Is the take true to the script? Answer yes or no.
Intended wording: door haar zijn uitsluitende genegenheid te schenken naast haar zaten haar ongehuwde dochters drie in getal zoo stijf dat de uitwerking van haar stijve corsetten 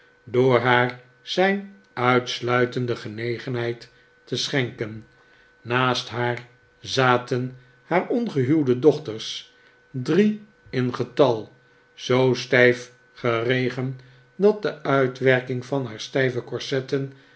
no